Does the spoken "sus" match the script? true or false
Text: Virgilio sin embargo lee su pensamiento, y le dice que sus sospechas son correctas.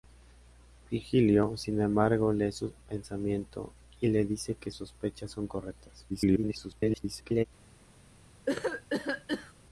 false